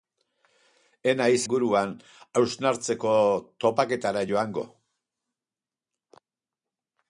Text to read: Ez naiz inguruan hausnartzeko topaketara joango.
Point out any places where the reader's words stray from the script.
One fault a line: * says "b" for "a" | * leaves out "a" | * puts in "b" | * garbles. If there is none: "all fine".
all fine